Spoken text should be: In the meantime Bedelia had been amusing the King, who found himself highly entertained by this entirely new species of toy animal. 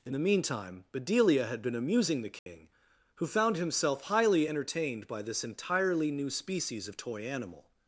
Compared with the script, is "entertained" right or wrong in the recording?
right